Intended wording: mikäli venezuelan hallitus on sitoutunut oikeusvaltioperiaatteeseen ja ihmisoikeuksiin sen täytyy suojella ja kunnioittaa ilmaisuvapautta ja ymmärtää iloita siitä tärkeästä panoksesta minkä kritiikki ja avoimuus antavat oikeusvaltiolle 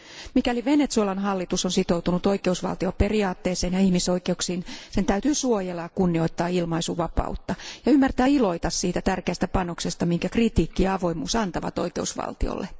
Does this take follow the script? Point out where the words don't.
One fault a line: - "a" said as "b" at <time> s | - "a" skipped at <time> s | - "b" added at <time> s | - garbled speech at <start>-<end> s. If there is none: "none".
none